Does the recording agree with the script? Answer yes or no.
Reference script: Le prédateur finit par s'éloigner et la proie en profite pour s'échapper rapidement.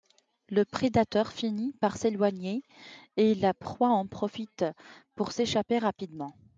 yes